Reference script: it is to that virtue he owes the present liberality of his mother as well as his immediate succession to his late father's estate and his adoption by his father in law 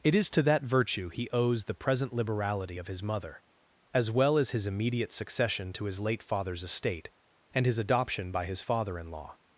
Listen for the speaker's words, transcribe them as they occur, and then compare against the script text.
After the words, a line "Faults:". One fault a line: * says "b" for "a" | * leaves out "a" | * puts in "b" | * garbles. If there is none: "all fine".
it is to that virtue he owes the present liberality of his mother as well as his immediate succession to his late father's estate and his adoption by his father in law
Faults:
all fine